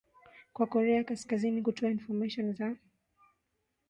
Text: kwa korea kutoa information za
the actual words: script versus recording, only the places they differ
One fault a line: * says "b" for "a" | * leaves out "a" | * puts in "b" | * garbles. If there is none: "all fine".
* puts in "kaskazini"